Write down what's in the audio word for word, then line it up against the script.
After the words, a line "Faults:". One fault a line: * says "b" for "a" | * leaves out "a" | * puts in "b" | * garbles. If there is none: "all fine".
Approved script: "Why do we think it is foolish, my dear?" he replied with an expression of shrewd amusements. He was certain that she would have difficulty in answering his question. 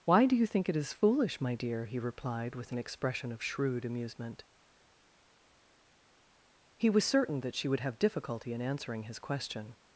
"Why do you think it is foolish, my dear?" he replied with an expression of shrewd amusement. He was certain that she would have difficulty in answering his question.
Faults:
* says "you" for "we"
* says "amusement" for "amusements"